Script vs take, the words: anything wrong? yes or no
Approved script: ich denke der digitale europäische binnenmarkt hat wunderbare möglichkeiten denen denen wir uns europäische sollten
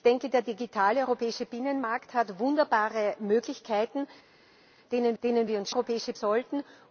no